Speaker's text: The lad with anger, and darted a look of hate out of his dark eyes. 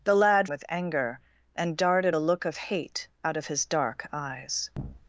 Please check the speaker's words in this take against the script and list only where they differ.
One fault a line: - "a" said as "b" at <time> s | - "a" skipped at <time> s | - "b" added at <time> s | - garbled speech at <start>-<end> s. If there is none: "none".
none